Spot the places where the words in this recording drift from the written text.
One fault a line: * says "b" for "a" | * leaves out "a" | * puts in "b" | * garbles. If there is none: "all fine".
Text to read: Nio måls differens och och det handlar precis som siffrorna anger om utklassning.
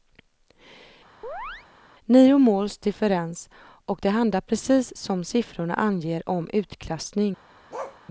* leaves out "och"